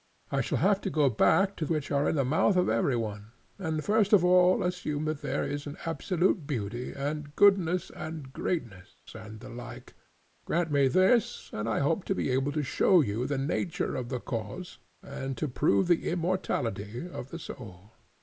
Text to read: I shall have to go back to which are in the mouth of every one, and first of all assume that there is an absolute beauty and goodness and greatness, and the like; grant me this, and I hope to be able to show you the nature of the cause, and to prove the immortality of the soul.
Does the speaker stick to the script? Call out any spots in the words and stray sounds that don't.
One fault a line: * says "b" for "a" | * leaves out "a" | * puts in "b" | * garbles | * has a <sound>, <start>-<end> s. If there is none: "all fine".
all fine